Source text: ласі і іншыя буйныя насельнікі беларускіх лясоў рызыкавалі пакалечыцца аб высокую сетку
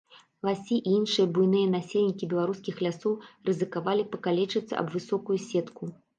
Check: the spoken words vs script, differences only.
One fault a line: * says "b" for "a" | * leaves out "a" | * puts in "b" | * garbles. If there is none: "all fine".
all fine